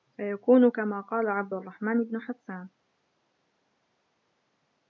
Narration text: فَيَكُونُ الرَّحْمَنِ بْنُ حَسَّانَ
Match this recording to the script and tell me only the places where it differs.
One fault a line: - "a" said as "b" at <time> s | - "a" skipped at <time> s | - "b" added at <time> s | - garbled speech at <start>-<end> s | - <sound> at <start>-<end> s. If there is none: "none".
- "كَمَا قَالَ عَبْدُ" added at 0.7 s